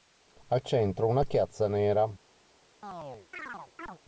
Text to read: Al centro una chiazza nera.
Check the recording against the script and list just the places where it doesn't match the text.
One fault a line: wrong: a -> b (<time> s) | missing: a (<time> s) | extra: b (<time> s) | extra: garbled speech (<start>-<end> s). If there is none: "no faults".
no faults